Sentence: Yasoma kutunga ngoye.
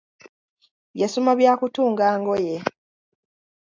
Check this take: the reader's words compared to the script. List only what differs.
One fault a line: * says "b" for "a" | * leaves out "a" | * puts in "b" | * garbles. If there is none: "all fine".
* puts in "bya"